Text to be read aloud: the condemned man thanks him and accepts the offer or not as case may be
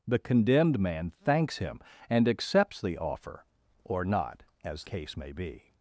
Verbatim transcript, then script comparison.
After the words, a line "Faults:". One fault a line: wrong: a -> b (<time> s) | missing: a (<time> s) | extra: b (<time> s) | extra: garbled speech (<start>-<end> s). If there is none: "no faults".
the condemned man thanks him and accepts the offer or not as case may be
Faults:
no faults